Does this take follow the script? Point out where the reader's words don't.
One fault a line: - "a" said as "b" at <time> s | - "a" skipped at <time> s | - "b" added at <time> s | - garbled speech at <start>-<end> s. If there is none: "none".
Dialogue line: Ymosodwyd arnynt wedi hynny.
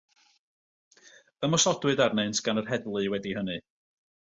- "gan yr heddlu" added at 2.5 s